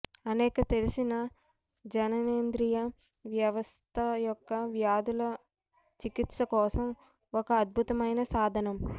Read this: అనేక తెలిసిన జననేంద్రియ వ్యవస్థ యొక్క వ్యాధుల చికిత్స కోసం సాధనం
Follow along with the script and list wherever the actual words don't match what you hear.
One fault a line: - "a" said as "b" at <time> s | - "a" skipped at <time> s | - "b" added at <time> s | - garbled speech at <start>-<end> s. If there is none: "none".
- "ఒక అద్భుతమైన" added at 7.3 s